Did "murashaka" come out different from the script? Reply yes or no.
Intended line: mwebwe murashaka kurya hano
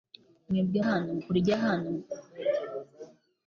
yes